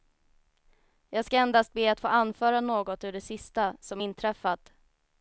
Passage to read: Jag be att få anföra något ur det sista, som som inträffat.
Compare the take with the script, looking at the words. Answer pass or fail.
fail